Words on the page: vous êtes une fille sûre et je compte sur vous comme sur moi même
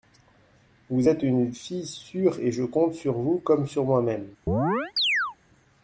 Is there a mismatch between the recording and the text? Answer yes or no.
no